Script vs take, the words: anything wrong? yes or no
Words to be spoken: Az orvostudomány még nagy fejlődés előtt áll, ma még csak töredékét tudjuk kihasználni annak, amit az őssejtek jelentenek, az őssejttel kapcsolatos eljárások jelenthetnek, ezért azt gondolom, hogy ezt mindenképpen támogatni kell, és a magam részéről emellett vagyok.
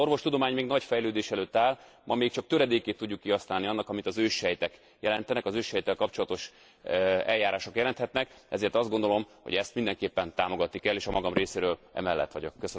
no